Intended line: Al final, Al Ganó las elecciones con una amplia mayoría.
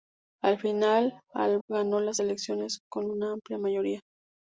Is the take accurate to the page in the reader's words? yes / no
yes